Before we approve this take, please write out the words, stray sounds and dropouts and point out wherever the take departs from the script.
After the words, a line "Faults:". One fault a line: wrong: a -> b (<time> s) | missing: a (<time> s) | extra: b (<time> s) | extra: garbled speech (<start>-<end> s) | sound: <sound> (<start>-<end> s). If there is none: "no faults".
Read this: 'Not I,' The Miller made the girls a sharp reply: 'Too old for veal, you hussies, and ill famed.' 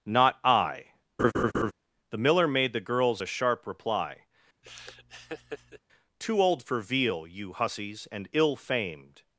'Not I,' The Miller made the girls a sharp reply: 'Too old for veal, you hussies, and ill famed.'
Faults:
sound: laugh (1.2-1.7 s)
sound: laugh (4.6-5.8 s)